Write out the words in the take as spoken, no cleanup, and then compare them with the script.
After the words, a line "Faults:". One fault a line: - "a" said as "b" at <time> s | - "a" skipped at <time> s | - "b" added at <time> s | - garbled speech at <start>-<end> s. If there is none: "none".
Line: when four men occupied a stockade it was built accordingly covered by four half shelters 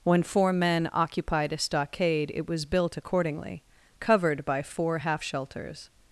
when four men occupied a stockade it was built accordingly covered by four half shelters
Faults:
none